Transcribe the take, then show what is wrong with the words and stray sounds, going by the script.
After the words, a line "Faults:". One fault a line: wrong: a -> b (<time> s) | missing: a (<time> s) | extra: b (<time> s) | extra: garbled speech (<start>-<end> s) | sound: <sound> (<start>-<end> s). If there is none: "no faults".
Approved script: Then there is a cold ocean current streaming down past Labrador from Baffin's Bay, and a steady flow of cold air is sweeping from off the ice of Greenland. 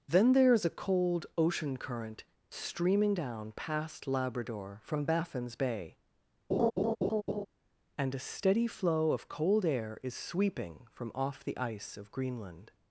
Then there is a cold ocean current streaming down past Labrador from Baffin's Bay, and a steady flow of cold air is sweeping from off the ice of Greenland.
Faults:
sound: laugh (6.5-7.5 s)